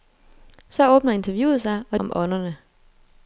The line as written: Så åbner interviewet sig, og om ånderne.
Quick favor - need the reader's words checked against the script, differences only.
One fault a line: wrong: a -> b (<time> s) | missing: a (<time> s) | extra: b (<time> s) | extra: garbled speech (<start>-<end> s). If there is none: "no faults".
no faults